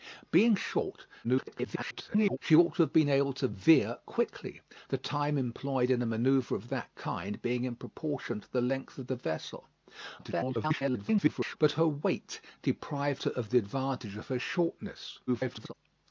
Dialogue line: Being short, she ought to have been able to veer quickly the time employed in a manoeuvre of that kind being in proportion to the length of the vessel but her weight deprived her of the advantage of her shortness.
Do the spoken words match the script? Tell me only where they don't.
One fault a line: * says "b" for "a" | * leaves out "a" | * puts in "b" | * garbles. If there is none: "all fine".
* garbles
* garbles
* garbles